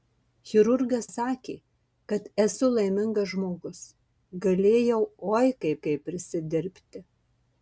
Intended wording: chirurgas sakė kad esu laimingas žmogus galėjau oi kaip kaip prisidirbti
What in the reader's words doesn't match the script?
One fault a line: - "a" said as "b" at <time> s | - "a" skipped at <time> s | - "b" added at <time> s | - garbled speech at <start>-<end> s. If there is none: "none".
none